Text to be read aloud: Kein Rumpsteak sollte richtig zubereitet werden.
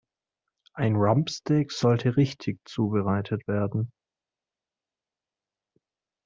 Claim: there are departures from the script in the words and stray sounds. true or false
true